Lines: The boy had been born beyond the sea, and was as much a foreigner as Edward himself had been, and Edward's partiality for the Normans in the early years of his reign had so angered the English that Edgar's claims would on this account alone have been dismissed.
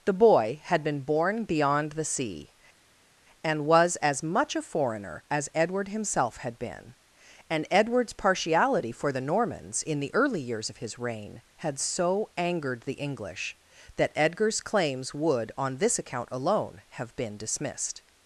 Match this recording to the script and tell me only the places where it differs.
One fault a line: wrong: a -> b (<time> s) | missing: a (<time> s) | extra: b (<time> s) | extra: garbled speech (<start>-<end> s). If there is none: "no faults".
no faults